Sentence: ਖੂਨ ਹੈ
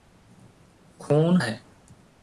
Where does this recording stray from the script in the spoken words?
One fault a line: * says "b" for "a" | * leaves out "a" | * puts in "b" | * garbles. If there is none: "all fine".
all fine